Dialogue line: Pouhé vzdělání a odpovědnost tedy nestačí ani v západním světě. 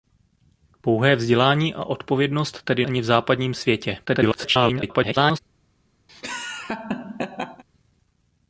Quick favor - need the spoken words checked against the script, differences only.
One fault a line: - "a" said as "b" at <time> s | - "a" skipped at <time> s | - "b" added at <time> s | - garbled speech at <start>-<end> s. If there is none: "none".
- "nestačí" skipped at 2.9 s
- garbled speech at 4.1-5.4 s